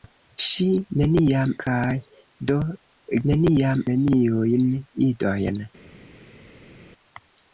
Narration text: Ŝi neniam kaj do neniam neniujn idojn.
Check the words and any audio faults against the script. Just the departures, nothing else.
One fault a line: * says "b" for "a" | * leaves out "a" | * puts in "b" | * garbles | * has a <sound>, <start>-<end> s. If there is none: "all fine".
all fine